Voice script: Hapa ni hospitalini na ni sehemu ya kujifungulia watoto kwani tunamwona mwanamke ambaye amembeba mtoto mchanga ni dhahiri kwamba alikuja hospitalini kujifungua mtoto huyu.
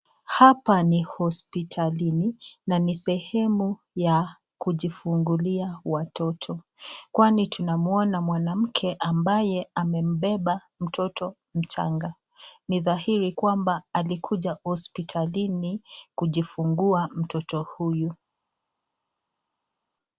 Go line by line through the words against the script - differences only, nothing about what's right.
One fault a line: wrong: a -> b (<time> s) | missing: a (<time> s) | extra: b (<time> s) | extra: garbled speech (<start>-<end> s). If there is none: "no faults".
no faults